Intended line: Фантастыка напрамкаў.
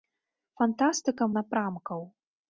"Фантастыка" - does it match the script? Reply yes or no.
yes